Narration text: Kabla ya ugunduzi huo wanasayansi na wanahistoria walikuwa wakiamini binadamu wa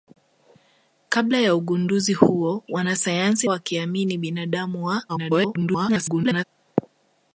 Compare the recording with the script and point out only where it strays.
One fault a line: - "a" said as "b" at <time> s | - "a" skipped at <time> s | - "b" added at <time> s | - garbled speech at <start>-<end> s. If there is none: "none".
- "na wanahistoria walikuwa" skipped at 3.5 s
- garbled speech at 5.1-6.4 s